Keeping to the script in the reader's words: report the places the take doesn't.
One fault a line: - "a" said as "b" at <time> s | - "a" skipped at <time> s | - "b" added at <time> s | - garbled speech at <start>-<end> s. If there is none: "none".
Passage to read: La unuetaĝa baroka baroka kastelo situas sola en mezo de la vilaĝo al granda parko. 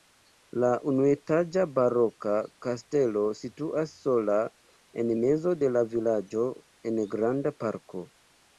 - "baroka" skipped at 2.3 s
- "al" said as "en" at 6.9 s